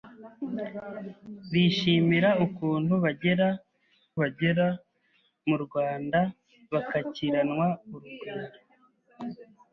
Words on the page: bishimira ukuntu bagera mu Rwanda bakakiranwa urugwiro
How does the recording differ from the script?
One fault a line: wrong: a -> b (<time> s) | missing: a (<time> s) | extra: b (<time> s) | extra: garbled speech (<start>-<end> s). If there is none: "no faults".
extra: bagera (4.2 s)